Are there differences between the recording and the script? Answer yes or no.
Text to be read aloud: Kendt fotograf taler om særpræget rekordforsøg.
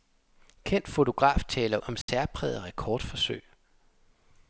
no